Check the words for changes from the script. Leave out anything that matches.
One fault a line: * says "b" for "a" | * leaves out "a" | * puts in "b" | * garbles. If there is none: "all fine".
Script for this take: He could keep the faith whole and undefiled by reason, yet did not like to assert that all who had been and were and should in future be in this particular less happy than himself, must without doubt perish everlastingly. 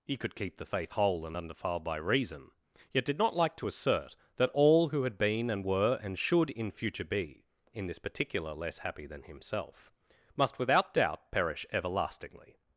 all fine